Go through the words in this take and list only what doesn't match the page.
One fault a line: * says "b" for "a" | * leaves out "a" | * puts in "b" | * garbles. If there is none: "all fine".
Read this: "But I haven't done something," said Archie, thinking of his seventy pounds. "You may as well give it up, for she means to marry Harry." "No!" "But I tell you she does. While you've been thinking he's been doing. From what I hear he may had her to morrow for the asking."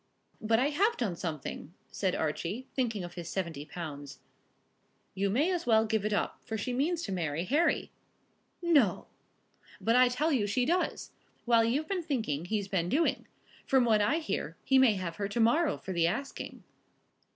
* says "have" for "haven't"
* says "have" for "had"